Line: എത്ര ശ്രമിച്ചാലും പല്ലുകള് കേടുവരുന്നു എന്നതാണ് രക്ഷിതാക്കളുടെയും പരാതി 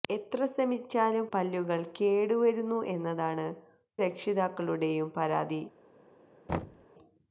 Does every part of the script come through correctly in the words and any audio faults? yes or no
no